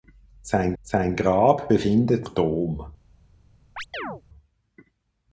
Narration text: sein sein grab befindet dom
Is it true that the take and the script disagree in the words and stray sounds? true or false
true